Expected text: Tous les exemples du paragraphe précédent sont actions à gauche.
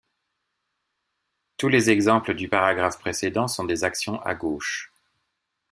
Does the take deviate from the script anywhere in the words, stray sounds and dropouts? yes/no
yes